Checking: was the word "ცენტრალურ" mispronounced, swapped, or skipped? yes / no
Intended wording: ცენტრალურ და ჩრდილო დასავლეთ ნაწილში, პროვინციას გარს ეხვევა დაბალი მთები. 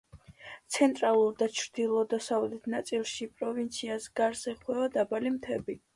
no